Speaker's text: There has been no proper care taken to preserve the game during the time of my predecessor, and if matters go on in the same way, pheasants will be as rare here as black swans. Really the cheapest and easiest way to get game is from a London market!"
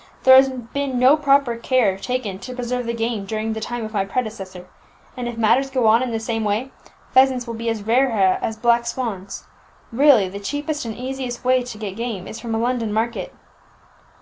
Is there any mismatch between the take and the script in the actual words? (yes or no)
no